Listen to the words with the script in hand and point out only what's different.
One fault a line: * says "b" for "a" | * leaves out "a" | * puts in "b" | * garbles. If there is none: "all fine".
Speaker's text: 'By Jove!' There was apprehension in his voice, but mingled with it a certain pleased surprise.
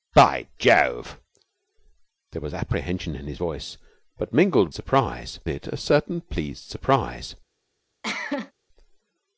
* says "surprise" for "with"